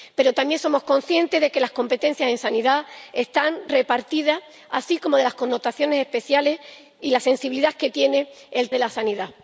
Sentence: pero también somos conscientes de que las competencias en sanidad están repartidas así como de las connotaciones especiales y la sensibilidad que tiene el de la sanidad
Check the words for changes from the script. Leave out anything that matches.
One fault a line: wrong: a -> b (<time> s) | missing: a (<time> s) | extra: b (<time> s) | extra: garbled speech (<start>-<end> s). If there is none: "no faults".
no faults